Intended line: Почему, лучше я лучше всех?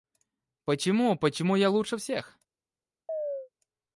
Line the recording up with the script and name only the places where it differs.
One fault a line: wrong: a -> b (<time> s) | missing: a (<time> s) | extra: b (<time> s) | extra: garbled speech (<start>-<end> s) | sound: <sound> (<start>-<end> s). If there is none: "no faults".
wrong: лучше -> почему (1.2 s)
sound: chirp (3.1-3.5 s)